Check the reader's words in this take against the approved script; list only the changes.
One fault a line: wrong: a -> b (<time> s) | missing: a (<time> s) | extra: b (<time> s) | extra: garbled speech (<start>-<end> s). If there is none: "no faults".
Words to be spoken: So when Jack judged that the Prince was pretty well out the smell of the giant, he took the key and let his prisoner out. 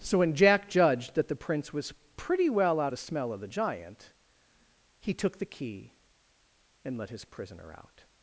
no faults